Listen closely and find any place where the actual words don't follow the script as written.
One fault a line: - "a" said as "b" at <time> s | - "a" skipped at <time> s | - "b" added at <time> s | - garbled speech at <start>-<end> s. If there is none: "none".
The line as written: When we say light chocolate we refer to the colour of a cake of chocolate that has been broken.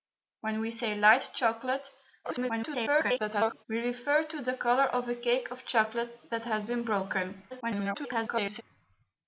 - garbled speech at 2.2-3.6 s
- garbled speech at 7.5-8.6 s